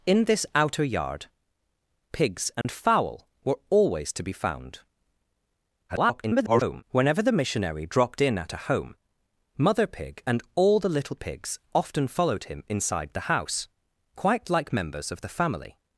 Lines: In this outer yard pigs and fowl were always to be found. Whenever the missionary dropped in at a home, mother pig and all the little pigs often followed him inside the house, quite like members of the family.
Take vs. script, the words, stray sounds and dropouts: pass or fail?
fail